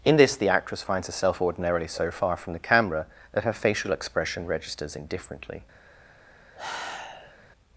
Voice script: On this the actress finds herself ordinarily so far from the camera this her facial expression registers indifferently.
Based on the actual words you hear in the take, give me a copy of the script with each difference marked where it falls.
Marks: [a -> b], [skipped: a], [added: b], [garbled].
[On -> In] this the actress finds herself ordinarily so far from the camera [this -> that] her facial expression registers indifferently.